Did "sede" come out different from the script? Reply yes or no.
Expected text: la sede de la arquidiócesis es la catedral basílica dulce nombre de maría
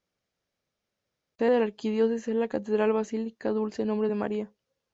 yes